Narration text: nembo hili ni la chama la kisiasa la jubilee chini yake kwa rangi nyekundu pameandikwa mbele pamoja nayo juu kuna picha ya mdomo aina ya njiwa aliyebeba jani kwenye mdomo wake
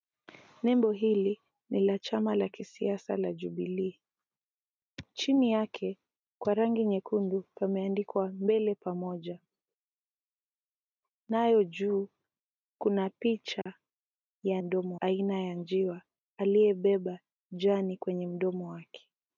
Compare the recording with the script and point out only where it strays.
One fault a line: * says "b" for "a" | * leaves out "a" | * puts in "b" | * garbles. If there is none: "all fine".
all fine